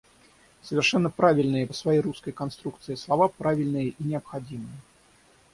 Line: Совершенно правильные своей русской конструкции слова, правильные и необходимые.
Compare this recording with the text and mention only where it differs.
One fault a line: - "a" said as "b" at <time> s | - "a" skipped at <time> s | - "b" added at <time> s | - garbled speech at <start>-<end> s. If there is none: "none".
none